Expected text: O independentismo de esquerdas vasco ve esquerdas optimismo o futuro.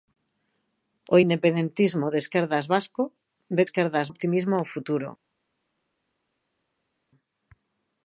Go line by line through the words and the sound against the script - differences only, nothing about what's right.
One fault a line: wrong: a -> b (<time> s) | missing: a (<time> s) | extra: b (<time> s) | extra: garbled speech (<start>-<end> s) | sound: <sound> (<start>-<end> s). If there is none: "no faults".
no faults